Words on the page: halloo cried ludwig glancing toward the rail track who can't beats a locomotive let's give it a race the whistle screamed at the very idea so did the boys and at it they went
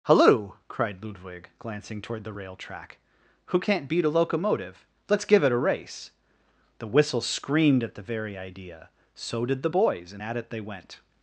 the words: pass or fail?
fail